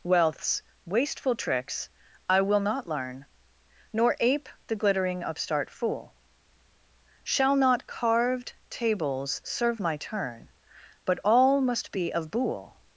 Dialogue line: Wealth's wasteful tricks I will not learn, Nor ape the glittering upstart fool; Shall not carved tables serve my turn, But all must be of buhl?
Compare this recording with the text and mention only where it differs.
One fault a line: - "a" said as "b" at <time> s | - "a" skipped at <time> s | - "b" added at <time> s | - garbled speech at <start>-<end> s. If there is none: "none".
none